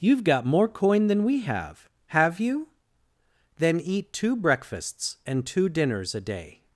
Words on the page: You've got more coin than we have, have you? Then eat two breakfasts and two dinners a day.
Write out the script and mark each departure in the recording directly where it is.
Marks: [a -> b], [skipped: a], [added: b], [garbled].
You've got more coin than we have, have you? Then eat two breakfasts and two dinners a day.